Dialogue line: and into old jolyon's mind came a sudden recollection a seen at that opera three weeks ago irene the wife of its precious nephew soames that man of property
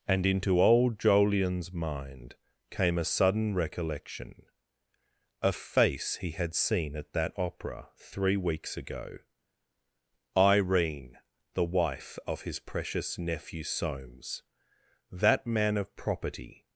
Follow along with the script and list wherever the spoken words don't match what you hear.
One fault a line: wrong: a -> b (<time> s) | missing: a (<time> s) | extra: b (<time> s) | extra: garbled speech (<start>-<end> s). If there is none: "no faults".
extra: face he had (5.5 s)
wrong: its -> his (12.4 s)